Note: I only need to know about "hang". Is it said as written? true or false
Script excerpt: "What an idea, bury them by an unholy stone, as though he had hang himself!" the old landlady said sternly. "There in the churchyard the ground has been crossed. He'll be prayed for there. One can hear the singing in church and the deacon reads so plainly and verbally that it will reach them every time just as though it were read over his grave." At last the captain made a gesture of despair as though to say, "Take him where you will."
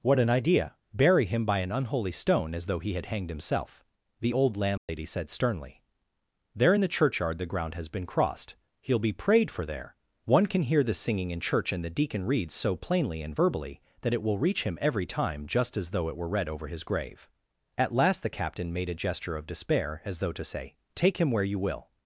false